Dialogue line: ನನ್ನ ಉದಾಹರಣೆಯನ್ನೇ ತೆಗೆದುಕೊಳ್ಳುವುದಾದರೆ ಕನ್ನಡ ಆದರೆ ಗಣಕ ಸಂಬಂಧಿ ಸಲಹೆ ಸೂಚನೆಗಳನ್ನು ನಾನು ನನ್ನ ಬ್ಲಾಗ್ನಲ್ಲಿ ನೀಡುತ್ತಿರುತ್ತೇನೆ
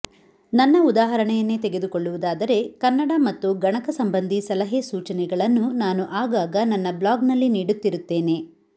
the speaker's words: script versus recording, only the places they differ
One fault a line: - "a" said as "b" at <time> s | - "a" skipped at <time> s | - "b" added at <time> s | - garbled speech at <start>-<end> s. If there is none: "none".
- "ಆದರೆ" said as "ಮತ್ತು" at 3.3 s
- "ಆಗಾಗ" added at 6.2 s